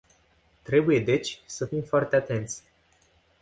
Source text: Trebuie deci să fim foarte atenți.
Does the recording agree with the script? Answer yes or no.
yes